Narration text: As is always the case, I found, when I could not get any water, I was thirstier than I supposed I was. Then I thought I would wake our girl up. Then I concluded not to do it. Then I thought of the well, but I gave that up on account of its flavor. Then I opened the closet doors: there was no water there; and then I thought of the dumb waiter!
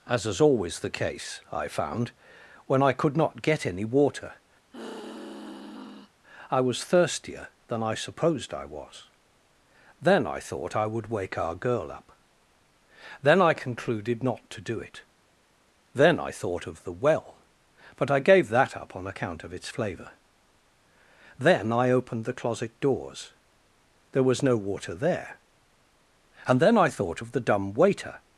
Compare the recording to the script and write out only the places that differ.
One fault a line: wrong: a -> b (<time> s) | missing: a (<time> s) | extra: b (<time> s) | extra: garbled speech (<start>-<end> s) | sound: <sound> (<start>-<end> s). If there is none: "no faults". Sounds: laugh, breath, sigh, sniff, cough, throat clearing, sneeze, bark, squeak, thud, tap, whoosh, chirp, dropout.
sound: sigh (4.7-6.1 s)